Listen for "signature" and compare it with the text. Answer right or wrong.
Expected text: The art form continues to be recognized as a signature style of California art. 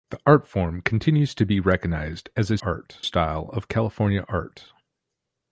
wrong